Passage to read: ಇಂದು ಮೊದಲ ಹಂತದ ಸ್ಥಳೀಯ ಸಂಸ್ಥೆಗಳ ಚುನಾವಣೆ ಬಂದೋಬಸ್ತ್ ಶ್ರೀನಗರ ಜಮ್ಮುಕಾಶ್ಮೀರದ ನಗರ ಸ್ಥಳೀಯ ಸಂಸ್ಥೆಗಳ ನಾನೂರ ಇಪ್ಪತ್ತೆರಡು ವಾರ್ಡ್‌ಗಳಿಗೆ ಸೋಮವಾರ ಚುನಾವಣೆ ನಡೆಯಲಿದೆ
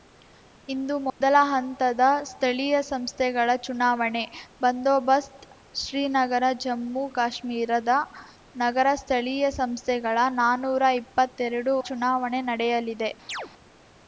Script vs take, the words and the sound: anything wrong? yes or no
yes